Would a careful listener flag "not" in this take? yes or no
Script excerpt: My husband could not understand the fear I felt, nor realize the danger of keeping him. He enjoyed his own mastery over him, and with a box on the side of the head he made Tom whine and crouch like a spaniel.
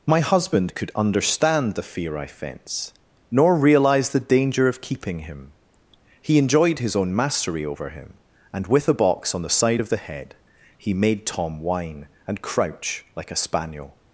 yes